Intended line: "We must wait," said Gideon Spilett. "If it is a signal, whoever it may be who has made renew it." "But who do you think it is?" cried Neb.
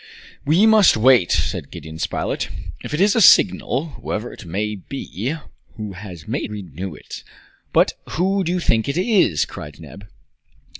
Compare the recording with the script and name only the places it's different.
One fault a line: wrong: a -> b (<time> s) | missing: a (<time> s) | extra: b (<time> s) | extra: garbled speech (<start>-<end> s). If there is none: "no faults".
no faults